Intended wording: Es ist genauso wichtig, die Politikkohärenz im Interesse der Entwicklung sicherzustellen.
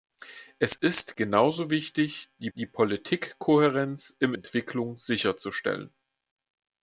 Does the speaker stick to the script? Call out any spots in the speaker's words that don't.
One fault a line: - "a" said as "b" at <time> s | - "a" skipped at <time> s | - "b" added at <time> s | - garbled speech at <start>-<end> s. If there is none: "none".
- "die" added at 2.5 s
- "Interesse der" skipped at 4.3 s